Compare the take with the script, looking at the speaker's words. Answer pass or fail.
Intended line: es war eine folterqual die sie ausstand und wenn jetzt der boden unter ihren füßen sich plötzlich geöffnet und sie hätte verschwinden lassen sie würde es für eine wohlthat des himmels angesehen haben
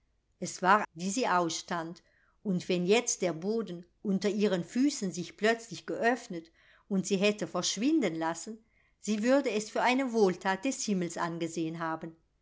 fail